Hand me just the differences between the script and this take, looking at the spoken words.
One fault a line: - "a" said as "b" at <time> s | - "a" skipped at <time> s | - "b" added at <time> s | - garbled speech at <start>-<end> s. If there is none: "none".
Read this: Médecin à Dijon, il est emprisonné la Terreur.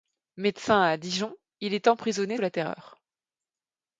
none